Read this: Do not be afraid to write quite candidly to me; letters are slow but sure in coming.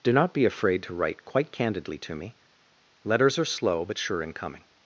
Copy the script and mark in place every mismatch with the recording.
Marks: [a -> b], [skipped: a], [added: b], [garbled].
Do not be afraid to write quite candidly to me; letters are slow but sure in coming.